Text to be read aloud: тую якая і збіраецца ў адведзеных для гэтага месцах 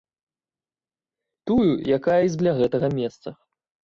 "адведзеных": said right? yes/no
no